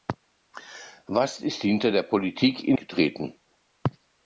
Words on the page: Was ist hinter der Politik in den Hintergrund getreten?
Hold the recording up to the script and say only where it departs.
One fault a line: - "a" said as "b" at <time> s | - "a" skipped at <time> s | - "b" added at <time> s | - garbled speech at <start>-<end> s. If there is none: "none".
- "den Hintergrund" skipped at 2.8 s